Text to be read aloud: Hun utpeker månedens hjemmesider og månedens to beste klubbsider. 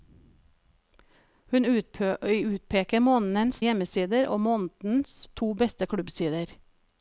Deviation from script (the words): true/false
false